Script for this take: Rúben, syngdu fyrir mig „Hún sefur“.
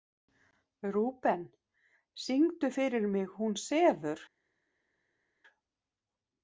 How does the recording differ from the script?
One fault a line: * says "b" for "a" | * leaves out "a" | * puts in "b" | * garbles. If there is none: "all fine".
all fine